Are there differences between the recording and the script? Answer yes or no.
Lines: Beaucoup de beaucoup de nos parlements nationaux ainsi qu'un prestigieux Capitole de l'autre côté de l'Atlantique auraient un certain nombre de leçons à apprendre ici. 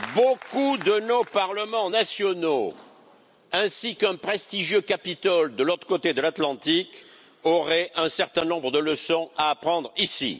yes